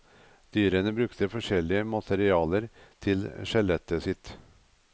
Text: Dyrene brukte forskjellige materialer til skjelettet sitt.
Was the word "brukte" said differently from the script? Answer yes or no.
no